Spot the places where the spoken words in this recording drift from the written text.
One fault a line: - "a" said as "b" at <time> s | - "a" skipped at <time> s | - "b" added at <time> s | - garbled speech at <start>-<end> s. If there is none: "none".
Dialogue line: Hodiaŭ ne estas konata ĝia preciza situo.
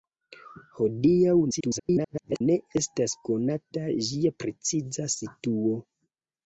- garbled speech at 1.5-2.4 s